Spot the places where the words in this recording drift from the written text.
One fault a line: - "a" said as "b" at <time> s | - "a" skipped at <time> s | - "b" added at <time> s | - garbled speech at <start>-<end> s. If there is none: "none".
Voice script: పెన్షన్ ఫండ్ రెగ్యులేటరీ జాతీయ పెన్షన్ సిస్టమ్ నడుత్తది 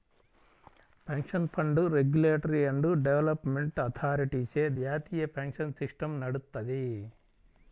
- "అండ్ డెవలప్మెంట్ అథారిటీచే" added at 2.6 s